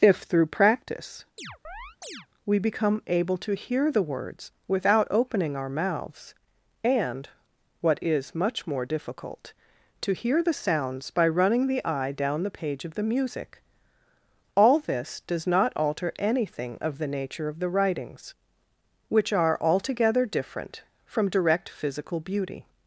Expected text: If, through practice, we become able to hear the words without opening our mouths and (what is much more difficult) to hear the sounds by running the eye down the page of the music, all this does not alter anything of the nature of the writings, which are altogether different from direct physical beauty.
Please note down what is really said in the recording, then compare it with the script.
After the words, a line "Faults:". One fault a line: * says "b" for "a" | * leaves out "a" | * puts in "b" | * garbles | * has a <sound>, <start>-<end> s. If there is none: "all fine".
If, through practice, we become able to hear the words without opening our mouths and (what is much more difficult) to hear the sounds by running the eye down the page of the music, all this does not alter anything of the nature of the writings, which are altogether different from direct physical beauty.
Faults:
* has a chirp, 1.4-2.3 s